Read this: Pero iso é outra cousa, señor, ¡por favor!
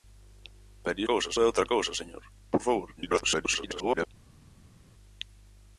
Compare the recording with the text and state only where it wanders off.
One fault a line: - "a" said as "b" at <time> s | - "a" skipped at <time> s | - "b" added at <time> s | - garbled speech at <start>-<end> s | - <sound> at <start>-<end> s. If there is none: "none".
- "iso" said as "cousa" at 1.1 s
- garbled speech at 3.0-4.1 s